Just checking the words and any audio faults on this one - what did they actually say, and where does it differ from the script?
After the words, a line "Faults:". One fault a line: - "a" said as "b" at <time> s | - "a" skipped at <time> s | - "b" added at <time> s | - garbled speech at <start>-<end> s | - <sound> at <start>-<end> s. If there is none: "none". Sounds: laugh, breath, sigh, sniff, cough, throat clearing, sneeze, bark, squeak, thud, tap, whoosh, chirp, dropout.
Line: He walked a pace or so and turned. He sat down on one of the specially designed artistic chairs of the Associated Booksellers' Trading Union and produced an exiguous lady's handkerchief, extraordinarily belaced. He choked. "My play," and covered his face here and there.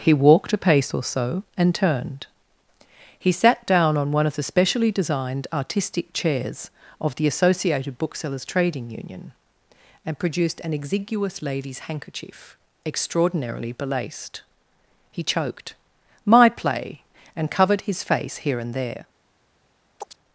He walked a pace or so and turned. He sat down on one of the specially designed artistic chairs of the Associated Booksellers' Trading Union and produced an exiguous lady's handkerchief, extraordinarily belaced. He choked. "My play," and covered his face here and there.
Faults:
- chirp at 20.0-20.2 s